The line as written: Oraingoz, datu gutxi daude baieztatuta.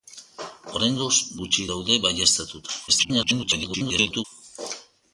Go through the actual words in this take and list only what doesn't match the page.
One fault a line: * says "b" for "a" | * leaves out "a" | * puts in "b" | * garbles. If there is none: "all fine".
* leaves out "datu"
* garbles